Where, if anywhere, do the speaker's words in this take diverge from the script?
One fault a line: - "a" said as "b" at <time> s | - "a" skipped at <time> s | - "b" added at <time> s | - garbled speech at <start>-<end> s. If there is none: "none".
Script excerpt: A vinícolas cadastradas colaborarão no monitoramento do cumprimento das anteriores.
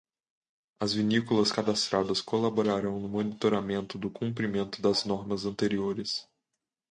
- "A" said as "As" at 0.8 s
- "normas" added at 5.1 s